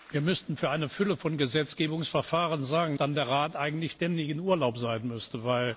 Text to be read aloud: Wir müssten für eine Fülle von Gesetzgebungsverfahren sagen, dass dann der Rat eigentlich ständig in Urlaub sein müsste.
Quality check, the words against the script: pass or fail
fail